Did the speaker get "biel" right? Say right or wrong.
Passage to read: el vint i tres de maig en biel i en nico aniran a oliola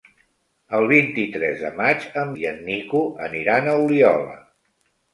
wrong